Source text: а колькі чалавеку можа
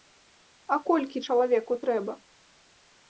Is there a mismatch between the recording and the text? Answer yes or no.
yes